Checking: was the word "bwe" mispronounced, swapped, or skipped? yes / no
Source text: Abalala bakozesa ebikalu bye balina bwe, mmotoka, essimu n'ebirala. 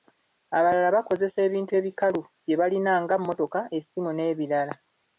yes